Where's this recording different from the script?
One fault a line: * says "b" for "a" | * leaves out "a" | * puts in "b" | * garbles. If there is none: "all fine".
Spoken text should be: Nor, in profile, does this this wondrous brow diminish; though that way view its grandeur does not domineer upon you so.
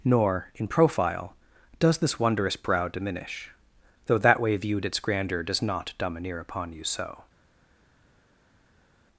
* leaves out "this"
* says "viewed" for "view"